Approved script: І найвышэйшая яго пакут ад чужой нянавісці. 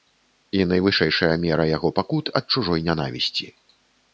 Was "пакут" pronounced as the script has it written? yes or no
yes